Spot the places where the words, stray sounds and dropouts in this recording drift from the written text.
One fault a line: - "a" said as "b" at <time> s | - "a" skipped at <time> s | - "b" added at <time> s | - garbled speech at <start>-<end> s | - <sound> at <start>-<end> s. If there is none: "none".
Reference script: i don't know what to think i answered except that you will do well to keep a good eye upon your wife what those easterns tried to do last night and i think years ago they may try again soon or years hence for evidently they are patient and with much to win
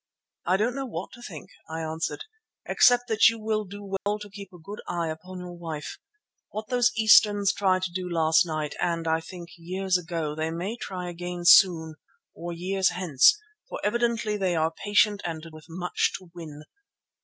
- dropout at 4.0-4.1 s